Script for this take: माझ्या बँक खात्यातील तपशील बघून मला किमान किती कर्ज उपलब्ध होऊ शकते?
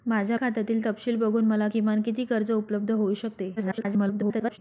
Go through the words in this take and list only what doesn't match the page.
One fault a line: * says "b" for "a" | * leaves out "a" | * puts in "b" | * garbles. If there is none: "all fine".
* leaves out "बँक"
* garbles